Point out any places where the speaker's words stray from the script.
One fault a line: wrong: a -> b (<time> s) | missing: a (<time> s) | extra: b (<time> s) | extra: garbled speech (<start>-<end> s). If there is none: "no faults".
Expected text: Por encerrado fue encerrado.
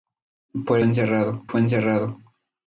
no faults